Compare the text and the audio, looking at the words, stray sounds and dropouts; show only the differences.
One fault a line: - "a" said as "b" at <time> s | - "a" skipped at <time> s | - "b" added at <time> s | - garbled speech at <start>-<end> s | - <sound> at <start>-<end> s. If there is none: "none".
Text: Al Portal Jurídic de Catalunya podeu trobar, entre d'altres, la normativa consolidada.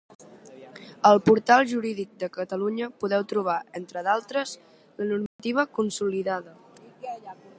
- dropout at 5.3-5.4 s